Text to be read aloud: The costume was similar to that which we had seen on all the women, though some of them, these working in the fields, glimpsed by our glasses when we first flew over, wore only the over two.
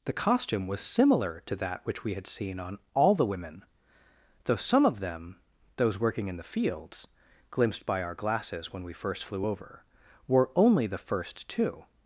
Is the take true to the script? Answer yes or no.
no